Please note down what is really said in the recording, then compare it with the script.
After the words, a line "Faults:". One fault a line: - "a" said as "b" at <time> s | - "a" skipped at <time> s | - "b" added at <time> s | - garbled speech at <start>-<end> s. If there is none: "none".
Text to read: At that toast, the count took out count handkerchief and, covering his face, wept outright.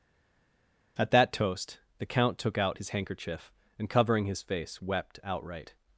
At that toast, the count took out his handkerchief and, covering his face, wept outright.
Faults:
- "count" said as "his" at 2.8 s